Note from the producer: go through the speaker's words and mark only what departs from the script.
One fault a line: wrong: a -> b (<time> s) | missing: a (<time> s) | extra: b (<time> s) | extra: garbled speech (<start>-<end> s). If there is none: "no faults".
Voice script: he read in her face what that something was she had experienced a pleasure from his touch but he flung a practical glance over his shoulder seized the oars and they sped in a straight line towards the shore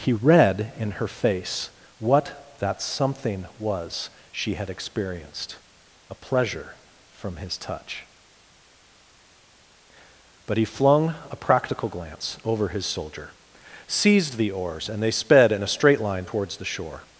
wrong: shoulder -> soldier (12.9 s)